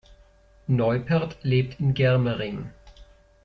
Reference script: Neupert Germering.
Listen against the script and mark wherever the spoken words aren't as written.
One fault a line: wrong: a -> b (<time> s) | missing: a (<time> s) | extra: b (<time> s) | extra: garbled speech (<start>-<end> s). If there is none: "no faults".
extra: lebt in (1.4 s)